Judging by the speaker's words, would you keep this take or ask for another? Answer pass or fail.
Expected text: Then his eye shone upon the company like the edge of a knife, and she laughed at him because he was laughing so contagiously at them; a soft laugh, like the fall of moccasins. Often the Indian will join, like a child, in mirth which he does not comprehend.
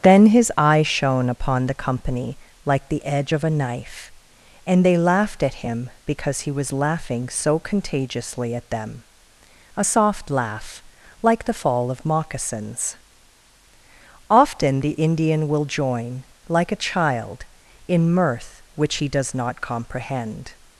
fail